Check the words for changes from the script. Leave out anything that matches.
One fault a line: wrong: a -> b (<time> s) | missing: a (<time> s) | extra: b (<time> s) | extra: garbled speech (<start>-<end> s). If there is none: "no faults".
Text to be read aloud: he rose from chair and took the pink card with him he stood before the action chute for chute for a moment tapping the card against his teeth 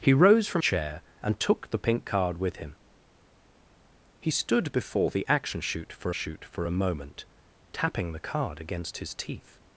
no faults